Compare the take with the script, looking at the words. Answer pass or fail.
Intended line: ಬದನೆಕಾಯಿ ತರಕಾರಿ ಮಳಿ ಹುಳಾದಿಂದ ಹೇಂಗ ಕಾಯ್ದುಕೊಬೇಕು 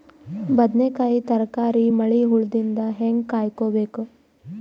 pass